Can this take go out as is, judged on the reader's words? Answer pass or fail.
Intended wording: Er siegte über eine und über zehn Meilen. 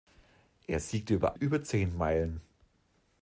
fail